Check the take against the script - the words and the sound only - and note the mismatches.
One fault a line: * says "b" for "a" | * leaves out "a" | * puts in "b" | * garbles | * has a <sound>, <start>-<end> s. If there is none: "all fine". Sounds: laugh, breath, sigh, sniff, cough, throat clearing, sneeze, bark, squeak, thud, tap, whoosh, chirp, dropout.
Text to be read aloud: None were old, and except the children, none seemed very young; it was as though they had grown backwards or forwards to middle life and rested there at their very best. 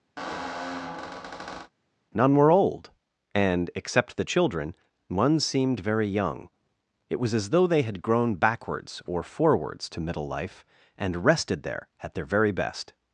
* has a squeak, 0.2-1.7 s
* says "one" for "none"